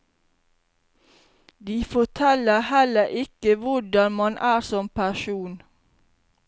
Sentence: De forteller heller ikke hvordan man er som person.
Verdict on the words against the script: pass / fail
pass